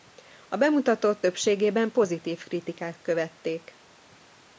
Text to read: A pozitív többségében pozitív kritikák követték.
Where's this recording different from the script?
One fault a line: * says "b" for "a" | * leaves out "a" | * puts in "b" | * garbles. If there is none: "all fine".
* says "bemutatót" for "pozitív"